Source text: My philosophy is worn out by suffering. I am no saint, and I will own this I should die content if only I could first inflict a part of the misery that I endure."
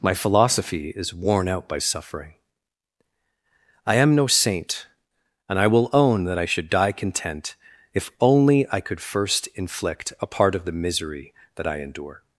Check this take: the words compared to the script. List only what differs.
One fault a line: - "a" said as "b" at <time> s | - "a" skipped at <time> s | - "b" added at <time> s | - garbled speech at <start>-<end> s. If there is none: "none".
- "this" said as "that" at 6.2 s